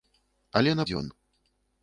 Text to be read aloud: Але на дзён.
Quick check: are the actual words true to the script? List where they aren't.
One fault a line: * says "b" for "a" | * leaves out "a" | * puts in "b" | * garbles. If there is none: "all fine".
all fine